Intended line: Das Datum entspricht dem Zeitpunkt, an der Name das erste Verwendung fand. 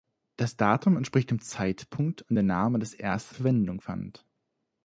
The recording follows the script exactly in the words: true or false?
true